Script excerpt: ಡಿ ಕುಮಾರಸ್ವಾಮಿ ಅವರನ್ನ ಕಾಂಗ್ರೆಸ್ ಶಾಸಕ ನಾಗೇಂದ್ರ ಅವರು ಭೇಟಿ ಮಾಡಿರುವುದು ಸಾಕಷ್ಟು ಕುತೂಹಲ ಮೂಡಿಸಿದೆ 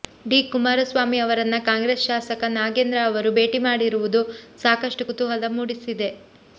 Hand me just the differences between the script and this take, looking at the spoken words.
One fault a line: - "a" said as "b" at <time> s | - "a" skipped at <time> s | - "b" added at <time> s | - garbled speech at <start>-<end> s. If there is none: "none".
none